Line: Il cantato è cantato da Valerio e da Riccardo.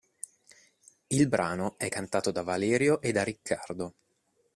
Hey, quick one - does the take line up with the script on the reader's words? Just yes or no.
no